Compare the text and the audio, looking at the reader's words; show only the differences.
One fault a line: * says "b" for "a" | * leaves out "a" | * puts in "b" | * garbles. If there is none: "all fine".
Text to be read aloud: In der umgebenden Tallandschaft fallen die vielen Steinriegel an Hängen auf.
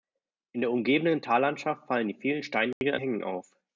all fine